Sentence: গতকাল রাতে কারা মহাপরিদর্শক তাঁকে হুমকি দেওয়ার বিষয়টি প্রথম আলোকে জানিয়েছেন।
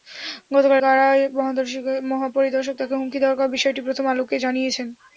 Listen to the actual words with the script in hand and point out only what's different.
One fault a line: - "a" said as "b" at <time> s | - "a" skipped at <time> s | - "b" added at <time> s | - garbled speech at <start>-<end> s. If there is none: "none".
- "রাতে" skipped at 0.8 s